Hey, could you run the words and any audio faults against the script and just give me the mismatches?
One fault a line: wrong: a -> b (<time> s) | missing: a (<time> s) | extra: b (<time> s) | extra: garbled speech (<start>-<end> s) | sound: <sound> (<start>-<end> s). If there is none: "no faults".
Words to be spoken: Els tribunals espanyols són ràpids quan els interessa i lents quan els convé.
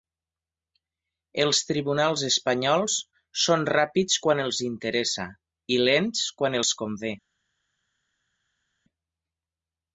no faults